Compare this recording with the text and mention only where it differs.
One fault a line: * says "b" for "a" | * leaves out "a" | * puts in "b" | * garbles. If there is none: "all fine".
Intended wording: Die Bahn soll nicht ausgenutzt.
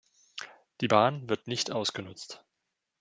* says "wird" for "soll"